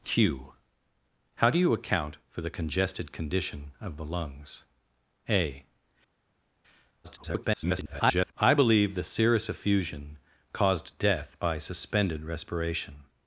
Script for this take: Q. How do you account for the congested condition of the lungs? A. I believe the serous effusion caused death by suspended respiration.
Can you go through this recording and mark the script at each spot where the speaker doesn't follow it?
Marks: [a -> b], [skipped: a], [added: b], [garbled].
Q. How do you account for the congested condition of the lungs? A. [garbled] I believe the serous effusion caused death by suspended respiration.